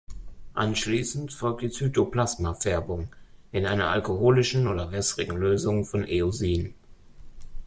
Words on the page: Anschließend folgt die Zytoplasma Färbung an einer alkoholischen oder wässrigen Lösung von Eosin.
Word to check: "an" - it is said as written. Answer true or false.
false